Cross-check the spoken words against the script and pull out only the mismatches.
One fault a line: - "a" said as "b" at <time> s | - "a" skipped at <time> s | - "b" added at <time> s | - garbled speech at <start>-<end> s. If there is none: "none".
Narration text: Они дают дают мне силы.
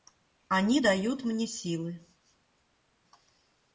- "дают" skipped at 1.2 s